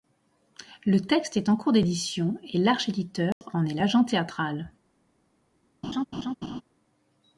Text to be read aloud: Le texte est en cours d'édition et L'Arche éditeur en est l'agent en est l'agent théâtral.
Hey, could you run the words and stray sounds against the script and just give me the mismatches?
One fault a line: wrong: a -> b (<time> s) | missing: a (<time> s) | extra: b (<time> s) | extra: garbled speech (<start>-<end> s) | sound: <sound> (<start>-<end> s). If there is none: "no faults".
sound: dropout (3.3-3.4 s)
missing: en est l'agent (4.0 s)
sound: laugh (5.8-6.6 s)